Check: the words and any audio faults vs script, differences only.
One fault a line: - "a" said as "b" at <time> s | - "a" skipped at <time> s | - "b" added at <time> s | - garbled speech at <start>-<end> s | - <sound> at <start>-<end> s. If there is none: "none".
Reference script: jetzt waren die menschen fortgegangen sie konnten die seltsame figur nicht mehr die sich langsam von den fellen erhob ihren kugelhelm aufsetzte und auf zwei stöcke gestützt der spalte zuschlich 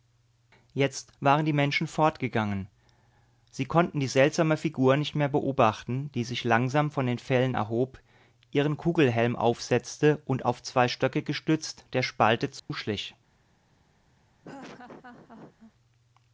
- "beobachten" added at 5.3 s
- dropout at 12.6-12.7 s
- laugh at 14.4-15.7 s